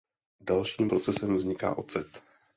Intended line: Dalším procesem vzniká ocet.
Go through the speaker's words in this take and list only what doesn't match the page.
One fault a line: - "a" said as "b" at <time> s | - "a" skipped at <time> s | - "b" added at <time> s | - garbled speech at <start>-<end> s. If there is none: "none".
none